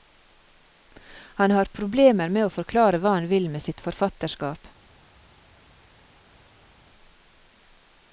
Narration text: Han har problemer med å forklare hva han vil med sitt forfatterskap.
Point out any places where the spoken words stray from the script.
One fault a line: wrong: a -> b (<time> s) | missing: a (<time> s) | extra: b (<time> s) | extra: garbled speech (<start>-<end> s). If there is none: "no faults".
no faults